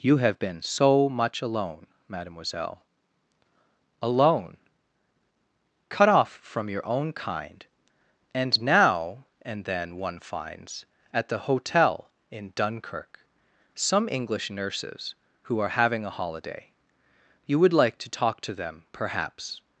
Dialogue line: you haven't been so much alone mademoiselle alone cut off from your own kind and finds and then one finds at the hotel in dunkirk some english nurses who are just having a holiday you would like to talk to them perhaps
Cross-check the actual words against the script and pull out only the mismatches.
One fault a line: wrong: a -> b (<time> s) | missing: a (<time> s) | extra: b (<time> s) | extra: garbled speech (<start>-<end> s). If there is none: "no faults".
wrong: haven't -> have (0.2 s)
wrong: finds -> now (8.6 s)
missing: just (15.7 s)